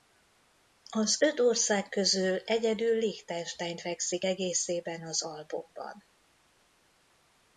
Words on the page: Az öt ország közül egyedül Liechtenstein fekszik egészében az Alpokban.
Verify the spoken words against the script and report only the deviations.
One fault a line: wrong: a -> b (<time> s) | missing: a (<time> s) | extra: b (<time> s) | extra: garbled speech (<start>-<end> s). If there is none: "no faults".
no faults